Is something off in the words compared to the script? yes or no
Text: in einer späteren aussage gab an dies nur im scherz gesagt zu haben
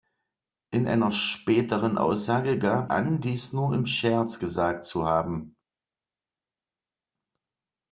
no